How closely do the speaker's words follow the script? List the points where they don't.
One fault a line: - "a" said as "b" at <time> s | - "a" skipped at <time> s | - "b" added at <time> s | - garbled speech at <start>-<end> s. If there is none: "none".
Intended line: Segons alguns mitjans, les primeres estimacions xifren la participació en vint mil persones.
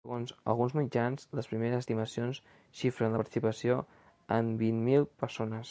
none